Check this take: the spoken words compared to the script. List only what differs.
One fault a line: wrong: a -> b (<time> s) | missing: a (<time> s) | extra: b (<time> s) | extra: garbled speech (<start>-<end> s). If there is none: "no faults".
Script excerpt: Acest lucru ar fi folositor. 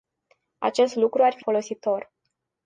no faults